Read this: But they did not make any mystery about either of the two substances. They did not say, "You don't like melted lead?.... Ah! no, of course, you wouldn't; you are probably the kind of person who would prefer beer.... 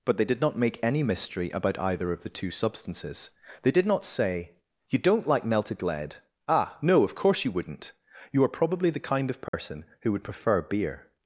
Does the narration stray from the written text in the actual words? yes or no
no